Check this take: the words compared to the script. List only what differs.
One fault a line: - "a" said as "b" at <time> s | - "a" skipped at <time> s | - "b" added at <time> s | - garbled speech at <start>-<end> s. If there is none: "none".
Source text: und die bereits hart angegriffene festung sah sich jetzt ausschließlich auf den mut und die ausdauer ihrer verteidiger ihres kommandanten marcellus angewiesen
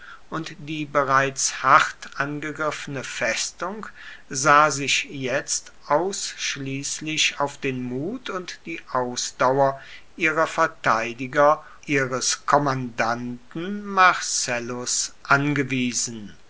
none